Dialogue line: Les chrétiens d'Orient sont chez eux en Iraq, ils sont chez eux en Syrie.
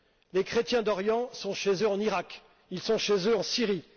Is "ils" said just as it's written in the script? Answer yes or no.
yes